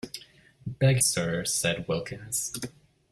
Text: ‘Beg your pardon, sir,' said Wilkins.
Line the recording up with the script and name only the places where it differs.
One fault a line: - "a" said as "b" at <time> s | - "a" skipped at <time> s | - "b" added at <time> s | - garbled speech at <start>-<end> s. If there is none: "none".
- "your pardon" skipped at 1.0 s